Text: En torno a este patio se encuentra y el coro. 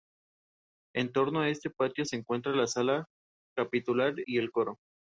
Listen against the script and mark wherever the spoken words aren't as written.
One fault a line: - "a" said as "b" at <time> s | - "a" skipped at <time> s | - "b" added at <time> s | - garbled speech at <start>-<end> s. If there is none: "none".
- "la sala capitular" added at 2.6 s